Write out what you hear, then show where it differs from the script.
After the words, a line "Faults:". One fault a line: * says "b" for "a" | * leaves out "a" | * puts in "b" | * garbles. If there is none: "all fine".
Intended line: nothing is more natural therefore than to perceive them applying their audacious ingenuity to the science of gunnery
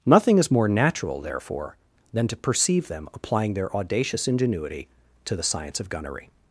nothing is more natural therefore than to perceive them applying their audacious ingenuity to the science of gunnery
Faults:
all fine